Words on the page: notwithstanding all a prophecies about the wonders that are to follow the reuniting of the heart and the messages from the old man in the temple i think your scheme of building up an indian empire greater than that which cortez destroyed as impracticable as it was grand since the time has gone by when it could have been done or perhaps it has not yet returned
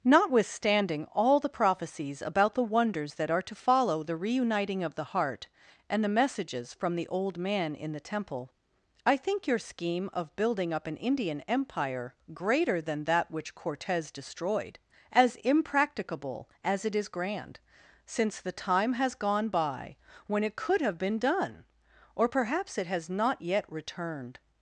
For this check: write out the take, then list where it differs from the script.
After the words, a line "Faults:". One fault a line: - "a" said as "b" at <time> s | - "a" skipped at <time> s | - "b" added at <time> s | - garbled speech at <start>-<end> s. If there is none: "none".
notwithstanding all the prophecies about the wonders that are to follow the reuniting of the heart and the messages from the old man in the temple i think your scheme of building up an indian empire greater than that which cortez destroyed as impracticable as it is grand since the time has gone by when it could have been done or perhaps it has not yet returned
Faults:
- "a" said as "the" at 1.4 s
- "was" said as "is" at 16.9 s